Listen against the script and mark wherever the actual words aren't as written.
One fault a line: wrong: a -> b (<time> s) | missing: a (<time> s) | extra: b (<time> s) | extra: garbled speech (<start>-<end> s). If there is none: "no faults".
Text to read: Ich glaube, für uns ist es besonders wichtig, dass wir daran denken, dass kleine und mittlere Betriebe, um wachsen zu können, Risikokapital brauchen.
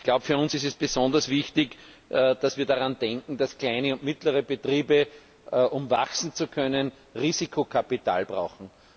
no faults